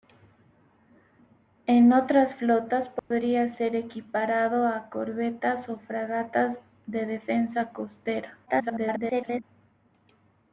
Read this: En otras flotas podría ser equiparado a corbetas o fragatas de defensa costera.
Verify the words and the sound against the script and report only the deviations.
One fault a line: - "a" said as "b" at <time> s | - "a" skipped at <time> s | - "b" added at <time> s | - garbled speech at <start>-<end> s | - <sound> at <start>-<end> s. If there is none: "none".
- dropout at 3.0-3.1 s
- garbled speech at 8.5-9.4 s